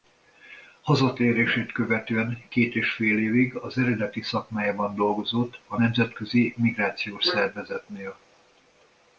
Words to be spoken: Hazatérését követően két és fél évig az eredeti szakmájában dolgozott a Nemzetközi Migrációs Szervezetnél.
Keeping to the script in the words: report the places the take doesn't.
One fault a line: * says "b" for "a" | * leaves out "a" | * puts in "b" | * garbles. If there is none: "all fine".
all fine